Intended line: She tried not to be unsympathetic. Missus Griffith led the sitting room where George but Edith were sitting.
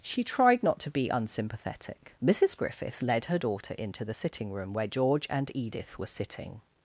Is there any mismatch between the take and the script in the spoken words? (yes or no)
yes